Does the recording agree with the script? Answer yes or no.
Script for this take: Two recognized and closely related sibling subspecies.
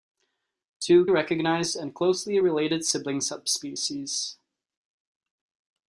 yes